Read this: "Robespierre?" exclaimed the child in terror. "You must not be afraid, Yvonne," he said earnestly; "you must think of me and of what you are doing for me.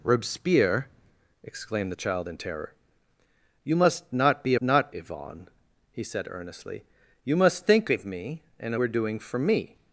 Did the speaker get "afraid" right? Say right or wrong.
wrong